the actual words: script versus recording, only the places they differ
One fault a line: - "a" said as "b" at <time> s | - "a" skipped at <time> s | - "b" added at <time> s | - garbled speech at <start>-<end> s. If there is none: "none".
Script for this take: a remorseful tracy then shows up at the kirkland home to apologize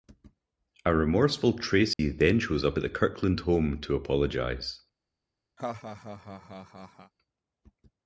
none